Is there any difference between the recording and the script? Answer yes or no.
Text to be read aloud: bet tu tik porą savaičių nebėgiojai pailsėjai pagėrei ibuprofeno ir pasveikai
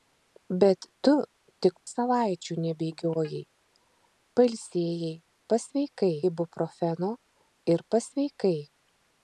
yes